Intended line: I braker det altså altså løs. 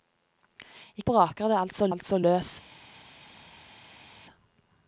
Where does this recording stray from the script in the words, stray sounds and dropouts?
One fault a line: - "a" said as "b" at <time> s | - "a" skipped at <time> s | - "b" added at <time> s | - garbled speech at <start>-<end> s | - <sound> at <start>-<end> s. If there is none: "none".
none